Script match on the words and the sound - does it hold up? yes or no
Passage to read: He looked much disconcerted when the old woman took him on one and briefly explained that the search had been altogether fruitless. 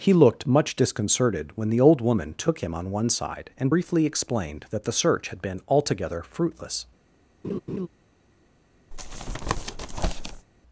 no